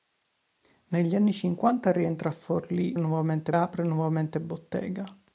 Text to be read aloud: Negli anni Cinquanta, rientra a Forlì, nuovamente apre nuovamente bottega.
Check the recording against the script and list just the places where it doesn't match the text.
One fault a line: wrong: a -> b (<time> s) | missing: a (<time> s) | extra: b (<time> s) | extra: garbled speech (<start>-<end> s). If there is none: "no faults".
no faults